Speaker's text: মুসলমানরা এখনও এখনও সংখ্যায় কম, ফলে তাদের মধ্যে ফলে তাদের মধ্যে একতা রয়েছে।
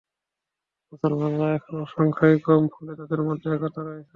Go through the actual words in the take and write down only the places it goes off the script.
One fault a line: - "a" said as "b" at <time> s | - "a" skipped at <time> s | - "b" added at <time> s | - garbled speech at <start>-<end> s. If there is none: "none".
- "এখনও" skipped at 1.8 s
- "ফলে তাদের মধ্যে" skipped at 3.5 s